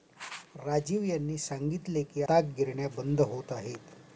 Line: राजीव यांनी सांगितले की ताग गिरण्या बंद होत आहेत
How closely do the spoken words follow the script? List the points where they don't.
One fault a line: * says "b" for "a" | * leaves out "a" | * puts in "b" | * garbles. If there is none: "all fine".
all fine